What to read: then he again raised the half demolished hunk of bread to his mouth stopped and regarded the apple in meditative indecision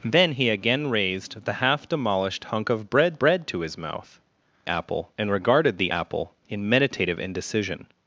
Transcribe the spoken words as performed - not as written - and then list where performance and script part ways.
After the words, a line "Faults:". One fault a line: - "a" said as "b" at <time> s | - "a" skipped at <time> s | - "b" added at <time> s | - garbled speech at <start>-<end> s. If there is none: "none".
then he again raised the half demolished hunk of bread bread to his mouth apple and regarded the apple in meditative indecision
Faults:
- "bread" added at 3.2 s
- "stopped" said as "apple" at 4.7 s